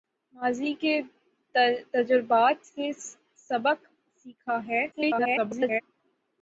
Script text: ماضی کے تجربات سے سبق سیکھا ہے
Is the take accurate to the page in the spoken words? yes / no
no